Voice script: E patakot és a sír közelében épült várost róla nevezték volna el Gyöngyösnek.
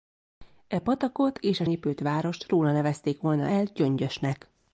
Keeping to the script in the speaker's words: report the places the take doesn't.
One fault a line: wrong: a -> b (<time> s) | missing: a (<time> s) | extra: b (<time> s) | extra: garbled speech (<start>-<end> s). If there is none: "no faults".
missing: sír közelében (1.6 s)